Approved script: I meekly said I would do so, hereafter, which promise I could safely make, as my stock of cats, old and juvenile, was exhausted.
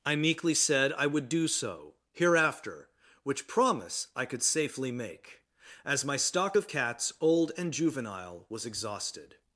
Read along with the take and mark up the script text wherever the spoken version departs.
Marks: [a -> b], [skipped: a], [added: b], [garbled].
I meekly said I would do so, hereafter, which promise I could safely make, as my stock of cats, old and juvenile, was exhausted.